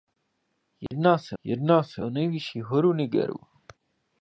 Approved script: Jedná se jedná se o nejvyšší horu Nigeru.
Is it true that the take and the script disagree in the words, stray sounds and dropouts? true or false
true